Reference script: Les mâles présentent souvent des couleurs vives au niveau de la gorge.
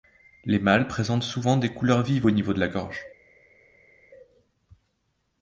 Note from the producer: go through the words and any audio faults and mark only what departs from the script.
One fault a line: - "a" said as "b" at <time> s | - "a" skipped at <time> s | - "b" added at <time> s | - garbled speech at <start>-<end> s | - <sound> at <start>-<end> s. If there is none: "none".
none